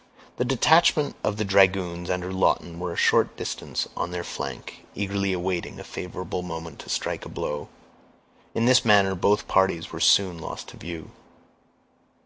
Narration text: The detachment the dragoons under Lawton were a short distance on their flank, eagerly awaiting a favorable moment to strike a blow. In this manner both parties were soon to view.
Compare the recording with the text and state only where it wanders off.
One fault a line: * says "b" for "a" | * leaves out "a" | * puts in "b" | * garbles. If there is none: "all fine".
* puts in "of"
* puts in "lost"